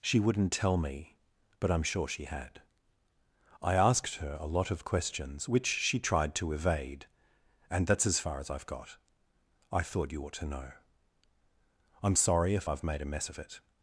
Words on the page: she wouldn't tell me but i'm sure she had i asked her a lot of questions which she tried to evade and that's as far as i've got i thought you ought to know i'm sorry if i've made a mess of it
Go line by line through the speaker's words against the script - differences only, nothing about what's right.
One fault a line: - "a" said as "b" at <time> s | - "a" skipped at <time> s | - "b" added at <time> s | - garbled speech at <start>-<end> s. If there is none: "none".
none